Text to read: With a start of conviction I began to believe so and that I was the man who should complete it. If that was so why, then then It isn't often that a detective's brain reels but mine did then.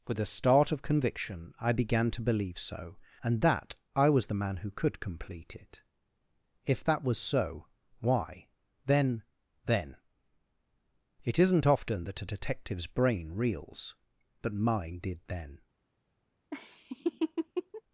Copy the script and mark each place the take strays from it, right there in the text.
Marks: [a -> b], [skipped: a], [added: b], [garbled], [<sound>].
With a start of conviction I began to believe so and that I was the man who [should -> could] complete it. If that was so why, then then It isn't often that a detective's brain reels but mine did then. [laugh]